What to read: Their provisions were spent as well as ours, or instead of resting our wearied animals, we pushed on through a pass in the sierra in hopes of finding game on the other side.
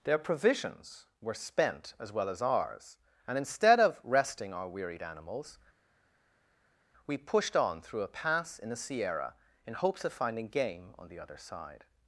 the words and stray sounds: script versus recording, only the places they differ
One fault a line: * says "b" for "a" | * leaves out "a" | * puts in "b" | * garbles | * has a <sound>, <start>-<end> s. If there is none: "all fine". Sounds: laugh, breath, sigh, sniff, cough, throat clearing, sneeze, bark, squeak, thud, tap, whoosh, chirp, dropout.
* says "and" for "or"